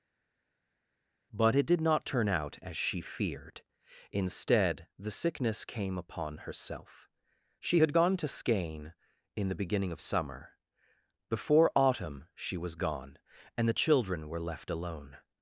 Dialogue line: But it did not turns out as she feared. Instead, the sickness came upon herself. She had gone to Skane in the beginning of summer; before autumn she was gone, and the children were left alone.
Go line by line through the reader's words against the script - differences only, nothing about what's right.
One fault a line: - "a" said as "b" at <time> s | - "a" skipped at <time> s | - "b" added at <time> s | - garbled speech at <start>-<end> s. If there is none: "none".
- "turns" said as "turn" at 2.0 s